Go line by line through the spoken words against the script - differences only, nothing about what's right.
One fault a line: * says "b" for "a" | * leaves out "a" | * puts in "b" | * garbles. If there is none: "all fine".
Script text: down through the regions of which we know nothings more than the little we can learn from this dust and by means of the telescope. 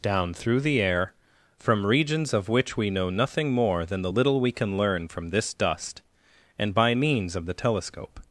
* puts in "air from"
* says "nothing" for "nothings"